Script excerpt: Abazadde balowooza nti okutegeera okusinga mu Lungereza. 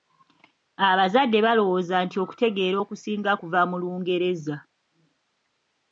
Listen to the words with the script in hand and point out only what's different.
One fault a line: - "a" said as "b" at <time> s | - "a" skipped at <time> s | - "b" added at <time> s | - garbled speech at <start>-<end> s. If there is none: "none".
- "kuva" added at 3.4 s